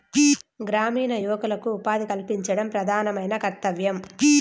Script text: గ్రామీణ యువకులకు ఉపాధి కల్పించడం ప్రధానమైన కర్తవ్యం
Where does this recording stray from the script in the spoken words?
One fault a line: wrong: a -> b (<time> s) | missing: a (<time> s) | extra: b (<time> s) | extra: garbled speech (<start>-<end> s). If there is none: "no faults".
no faults